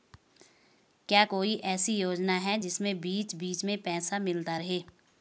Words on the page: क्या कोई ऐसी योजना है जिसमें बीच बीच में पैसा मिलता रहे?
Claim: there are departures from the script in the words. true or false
false